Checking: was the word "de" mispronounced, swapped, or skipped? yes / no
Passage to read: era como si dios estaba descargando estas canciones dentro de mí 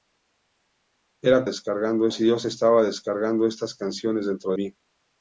yes